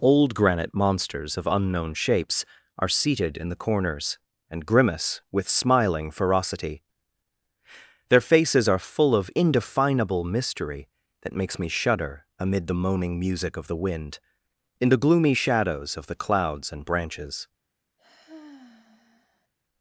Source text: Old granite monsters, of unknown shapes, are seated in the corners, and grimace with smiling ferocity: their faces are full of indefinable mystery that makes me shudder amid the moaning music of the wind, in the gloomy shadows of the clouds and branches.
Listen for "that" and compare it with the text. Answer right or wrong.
right